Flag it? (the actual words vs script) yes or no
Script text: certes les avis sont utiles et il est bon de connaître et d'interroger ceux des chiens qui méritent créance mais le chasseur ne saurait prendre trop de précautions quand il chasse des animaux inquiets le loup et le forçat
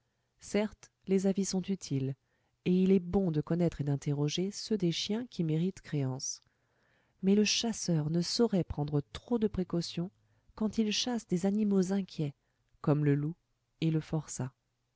yes